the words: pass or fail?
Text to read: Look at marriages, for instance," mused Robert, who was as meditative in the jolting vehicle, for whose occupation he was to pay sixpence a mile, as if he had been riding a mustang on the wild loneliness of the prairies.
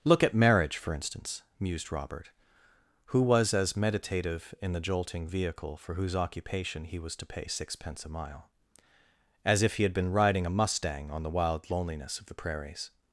fail